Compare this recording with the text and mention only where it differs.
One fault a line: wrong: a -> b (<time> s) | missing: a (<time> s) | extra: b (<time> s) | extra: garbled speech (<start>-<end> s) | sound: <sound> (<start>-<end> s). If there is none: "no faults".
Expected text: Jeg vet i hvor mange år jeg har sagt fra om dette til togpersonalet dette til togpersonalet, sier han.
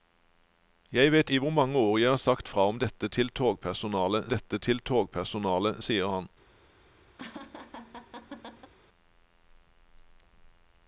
sound: laugh (7.2-8.7 s)